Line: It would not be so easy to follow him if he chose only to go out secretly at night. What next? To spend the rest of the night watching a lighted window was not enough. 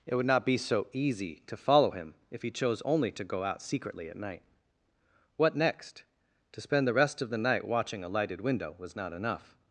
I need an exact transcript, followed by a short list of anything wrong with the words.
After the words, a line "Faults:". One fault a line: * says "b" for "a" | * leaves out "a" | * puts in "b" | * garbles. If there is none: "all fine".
It would not be so easy to follow him if he chose only to go out secretly at night. What next? To spend the rest of the night watching a lighted window was not enough.
Faults:
all fine